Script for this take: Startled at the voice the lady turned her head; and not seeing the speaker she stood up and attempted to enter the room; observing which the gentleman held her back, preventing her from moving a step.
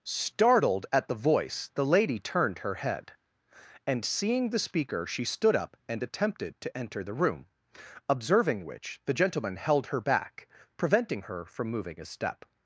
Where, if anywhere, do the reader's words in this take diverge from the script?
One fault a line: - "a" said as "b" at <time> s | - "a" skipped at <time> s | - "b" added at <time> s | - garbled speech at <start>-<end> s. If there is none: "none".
- "not" skipped at 4.0 s